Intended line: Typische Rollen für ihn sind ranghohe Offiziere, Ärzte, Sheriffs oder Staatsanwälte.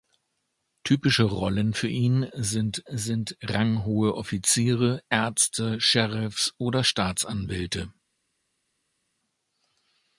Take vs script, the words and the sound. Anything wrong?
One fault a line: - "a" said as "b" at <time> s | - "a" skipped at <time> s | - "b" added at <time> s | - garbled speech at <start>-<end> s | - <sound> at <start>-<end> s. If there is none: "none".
- "sind" added at 2.9 s